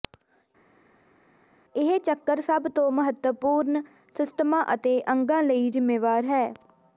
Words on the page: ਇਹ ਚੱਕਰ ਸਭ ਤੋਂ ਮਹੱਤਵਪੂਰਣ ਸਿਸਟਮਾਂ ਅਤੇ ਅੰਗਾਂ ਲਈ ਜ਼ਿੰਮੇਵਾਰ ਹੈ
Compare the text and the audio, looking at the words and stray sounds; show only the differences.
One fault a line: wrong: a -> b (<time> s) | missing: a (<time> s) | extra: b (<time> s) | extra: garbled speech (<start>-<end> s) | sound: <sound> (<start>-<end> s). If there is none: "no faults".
no faults